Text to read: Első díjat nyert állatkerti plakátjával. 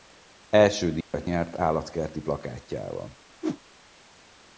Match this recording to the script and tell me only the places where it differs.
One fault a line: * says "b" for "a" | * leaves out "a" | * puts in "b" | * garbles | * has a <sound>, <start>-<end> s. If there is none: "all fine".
* has a dropout, 1.0-1.1 s
* has a whoosh, 3.4-3.6 s